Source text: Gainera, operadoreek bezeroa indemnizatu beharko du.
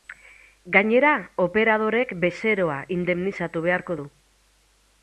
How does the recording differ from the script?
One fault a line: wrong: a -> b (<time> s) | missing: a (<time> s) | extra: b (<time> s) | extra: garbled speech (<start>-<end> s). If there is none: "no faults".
no faults